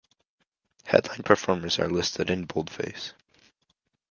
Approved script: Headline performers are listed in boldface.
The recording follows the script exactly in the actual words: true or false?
true